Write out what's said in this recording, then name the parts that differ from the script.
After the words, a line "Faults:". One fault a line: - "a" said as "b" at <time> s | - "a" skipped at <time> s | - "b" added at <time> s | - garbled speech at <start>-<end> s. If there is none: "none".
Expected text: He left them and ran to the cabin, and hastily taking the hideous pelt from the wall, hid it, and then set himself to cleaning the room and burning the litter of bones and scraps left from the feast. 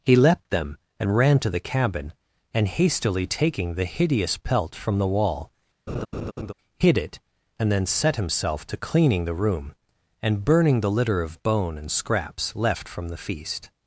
He leapt them and ran to the cabin, and hastily taking the hideous pelt from the wall, hid it, and then set himself to cleaning the room and burning the litter of bone and scraps left from the feast.
Faults:
- "left" said as "leapt" at 0.1 s
- "bones" said as "bone" at 11.4 s